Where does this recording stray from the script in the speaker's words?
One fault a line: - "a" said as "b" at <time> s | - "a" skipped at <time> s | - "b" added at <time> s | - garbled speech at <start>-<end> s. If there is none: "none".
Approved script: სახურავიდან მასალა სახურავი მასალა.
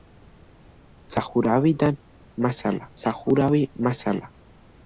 none